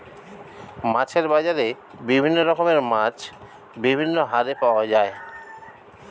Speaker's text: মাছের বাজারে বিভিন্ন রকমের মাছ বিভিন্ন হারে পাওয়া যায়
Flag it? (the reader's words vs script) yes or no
no